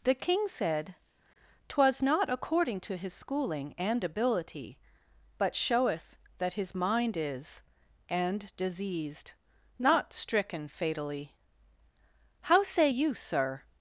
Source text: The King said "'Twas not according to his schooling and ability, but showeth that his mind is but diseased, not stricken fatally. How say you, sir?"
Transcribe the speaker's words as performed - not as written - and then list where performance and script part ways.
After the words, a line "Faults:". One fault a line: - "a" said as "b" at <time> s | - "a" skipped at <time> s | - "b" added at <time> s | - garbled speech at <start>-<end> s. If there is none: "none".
The King said "'Twas not according to his schooling and ability, but showeth that his mind is and diseased, not stricken fatally. How say you, sir?"
Faults:
- "but" said as "and" at 8.1 s